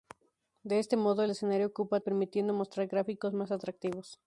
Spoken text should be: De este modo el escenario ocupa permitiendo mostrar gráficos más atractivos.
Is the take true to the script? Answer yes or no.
yes